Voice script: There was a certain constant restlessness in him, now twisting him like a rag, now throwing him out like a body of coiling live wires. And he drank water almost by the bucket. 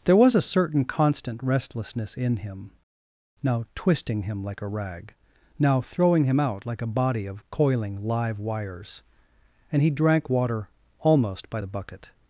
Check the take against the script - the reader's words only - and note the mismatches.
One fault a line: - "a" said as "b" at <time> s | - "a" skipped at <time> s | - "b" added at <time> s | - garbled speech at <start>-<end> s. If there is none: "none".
none